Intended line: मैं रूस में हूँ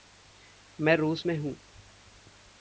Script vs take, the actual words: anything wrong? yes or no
no